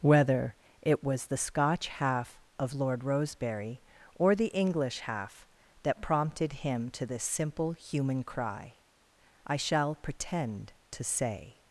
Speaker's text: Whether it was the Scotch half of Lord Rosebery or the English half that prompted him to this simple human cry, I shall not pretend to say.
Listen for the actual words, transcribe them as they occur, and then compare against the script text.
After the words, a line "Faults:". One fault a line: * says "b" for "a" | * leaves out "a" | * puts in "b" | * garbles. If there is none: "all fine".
Whether it was the Scotch half of Lord Rosebery or the English half that prompted him to this simple human cry, I shall pretend to say.
Faults:
* leaves out "not"